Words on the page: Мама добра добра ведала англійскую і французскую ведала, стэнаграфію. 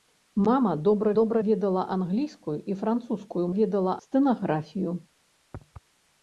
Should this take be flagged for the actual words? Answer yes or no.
no